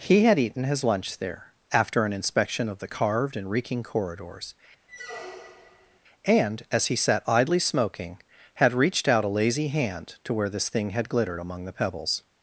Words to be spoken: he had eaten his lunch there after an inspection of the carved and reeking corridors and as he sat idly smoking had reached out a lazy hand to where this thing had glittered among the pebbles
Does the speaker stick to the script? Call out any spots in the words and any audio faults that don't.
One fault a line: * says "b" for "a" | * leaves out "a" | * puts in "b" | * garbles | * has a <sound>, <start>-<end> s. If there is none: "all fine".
* has a squeak, 4.9-6.0 s